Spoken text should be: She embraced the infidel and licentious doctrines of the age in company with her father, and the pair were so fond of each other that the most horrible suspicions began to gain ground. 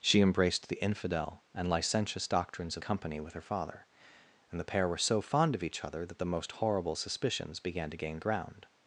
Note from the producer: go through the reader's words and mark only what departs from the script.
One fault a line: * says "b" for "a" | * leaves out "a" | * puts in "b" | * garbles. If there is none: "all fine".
* leaves out "the age in"